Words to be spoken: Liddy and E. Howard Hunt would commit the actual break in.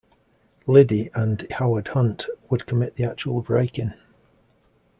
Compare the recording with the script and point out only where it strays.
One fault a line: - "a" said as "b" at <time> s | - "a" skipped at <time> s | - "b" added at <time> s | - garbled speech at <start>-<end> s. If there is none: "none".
- "E" skipped at 1.5 s